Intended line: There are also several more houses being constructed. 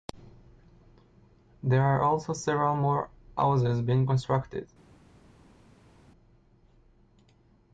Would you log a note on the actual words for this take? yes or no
no